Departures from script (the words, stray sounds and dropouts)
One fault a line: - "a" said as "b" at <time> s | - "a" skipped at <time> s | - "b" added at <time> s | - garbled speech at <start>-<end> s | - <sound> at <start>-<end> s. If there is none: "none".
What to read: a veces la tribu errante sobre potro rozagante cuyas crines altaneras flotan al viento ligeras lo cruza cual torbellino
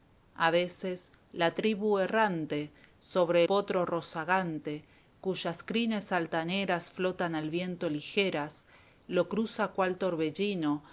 none